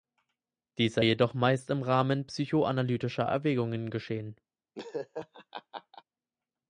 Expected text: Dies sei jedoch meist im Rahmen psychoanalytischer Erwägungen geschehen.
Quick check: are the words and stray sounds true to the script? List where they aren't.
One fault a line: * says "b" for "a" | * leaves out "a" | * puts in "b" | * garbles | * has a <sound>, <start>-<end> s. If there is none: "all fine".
* has a laugh, 4.7-6.0 s